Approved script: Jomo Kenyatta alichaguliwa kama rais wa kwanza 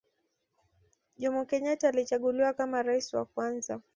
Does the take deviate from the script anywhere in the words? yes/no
no